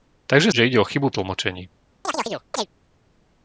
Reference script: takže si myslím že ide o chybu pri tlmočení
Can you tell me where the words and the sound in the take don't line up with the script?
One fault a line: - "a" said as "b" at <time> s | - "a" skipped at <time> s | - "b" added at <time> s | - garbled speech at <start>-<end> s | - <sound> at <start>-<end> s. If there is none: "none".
- "si myslím" skipped at 0.5 s
- "pri" skipped at 1.1 s
- chirp at 2.0-2.7 s